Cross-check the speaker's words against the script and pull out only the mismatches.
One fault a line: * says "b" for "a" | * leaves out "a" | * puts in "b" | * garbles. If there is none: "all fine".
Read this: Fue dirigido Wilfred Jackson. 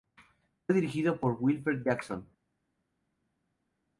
* puts in "por"